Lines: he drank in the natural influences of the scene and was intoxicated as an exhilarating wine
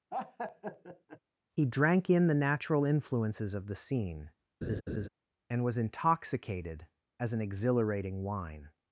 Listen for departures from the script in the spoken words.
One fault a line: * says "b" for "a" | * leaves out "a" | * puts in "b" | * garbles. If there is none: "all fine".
all fine